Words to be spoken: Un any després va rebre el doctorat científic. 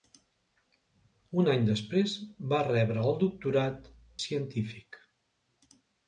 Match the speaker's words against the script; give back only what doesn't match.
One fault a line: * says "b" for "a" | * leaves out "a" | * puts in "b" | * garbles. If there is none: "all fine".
all fine